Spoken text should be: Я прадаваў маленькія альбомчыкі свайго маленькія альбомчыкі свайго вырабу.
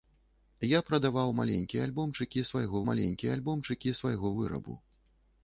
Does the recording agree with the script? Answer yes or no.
yes